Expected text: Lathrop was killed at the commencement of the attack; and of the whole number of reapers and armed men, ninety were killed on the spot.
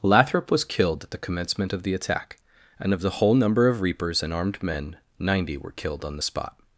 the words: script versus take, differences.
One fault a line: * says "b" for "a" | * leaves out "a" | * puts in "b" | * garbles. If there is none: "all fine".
all fine